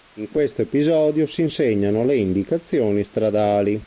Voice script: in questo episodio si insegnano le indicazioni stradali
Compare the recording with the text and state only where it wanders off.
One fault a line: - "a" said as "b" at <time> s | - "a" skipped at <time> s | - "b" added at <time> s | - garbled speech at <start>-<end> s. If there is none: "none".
none